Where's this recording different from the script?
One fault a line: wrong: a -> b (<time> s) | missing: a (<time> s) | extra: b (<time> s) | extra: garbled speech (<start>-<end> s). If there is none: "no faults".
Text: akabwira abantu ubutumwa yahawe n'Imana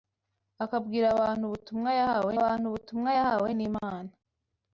extra: abantu ubutumwa yahawe (2.4 s)